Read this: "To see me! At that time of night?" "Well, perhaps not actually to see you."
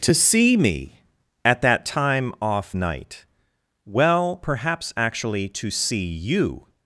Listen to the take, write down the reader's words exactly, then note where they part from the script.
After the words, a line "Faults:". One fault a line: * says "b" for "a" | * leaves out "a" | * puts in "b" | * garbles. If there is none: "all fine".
"To see me! At that time off night?" "Well, perhaps actually to see you."
Faults:
* says "off" for "of"
* leaves out "not"